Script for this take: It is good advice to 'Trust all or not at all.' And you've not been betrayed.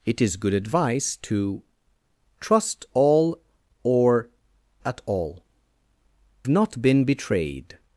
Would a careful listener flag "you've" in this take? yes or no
yes